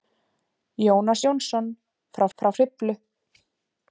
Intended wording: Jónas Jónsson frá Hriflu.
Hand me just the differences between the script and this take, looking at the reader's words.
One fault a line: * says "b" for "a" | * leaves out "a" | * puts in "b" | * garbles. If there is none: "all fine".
* puts in "frá"